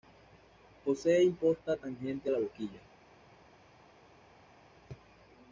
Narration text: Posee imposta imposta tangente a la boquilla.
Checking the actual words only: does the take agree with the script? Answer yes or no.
no